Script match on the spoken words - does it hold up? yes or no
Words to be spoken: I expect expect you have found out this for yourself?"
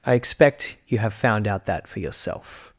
no